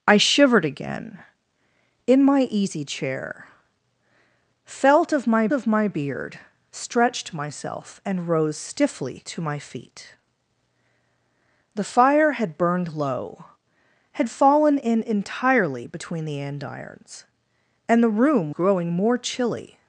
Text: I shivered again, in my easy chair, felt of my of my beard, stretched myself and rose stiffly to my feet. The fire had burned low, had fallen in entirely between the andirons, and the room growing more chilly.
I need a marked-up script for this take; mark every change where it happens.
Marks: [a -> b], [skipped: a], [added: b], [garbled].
I shivered again, in my easy chair, felt of my of my beard, stretched myself and rose stiffly to my feet. The fire had burned low, had fallen in entirely between the andirons, and the room growing more chilly.